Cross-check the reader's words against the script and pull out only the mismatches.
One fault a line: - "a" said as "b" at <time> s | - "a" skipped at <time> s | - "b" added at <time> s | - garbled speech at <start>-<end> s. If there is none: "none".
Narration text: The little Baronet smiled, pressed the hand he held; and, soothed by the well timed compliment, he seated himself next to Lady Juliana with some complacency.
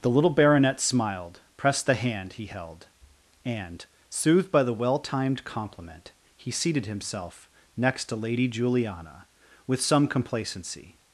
none